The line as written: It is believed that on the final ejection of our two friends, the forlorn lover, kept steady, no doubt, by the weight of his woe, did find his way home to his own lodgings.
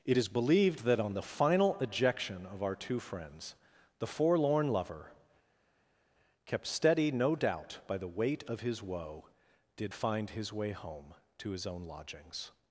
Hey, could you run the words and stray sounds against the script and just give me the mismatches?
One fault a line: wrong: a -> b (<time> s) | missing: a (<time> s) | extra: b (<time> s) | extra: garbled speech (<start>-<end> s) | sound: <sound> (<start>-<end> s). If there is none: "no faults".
no faults